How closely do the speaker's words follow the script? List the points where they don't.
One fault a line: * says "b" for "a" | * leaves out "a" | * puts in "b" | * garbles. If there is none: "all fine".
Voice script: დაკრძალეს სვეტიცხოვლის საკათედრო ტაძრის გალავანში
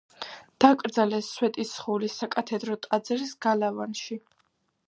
all fine